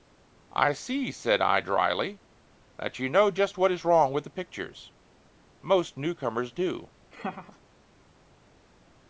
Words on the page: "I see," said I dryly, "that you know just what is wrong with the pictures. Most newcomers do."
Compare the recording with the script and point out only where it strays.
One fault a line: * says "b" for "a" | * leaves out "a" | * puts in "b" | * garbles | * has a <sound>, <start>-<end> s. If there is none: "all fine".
* has a laugh, 7.1-7.6 s